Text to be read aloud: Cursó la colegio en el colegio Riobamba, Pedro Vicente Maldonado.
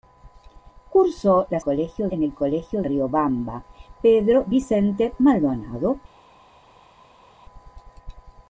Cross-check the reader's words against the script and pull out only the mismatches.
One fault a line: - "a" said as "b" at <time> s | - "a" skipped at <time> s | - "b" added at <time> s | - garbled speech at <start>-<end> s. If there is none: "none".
none